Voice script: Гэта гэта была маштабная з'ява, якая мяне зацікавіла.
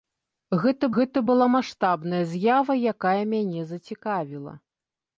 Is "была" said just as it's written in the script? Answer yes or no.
yes